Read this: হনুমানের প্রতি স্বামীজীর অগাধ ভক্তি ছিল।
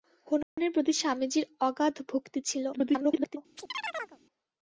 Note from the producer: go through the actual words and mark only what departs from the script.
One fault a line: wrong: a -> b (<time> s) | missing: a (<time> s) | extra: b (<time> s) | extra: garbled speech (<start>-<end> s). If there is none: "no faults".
extra: garbled speech (2.7-3.4 s)